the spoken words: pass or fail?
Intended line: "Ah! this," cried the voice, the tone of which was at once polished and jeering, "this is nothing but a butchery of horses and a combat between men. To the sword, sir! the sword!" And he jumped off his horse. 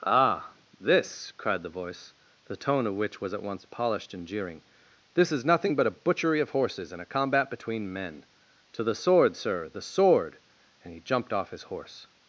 pass